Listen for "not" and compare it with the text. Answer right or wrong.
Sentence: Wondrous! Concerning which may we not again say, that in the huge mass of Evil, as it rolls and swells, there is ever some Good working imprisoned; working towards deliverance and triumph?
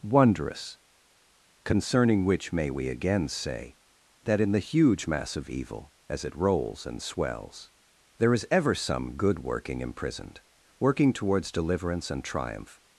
wrong